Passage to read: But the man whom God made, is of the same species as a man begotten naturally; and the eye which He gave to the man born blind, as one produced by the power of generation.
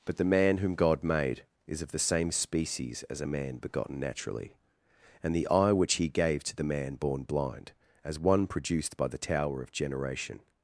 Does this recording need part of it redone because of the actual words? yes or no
yes